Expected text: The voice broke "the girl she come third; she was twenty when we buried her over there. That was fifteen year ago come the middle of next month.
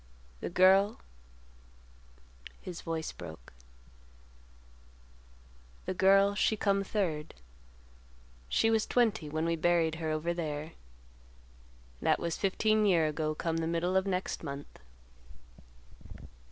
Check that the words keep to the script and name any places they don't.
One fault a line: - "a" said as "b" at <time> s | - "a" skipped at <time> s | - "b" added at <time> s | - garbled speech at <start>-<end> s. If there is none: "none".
- "girl his" added at 0.5 s